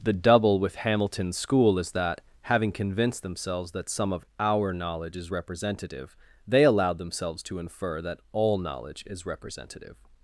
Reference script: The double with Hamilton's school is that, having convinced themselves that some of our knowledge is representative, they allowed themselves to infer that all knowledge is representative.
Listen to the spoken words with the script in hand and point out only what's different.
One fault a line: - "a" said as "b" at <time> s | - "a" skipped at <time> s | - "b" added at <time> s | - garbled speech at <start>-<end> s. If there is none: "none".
none